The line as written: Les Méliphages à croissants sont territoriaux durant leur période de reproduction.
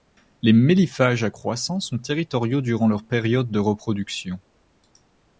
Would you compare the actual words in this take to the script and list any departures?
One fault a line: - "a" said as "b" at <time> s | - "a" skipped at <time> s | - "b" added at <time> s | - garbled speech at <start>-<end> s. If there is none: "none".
none